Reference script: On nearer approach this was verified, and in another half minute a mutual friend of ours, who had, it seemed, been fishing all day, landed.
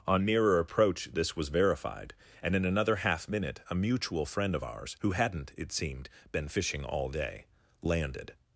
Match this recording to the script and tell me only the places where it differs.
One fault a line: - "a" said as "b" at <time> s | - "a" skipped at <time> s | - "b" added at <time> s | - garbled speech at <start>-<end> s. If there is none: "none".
- "had" said as "hadn't" at 5.1 s